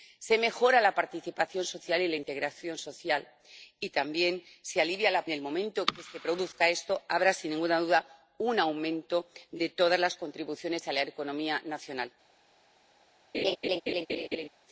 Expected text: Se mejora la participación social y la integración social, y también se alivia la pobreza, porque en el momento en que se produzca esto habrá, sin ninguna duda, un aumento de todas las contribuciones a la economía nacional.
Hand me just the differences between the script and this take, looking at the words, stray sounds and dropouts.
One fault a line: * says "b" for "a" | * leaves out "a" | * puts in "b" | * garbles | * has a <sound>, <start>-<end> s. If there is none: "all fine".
* leaves out "pobreza porque en"
* has a laugh, 13.3-14.5 s